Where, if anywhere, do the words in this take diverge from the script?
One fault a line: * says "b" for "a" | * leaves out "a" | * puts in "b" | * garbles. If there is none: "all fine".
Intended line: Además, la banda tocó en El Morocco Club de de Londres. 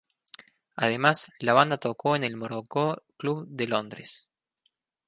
* leaves out "de"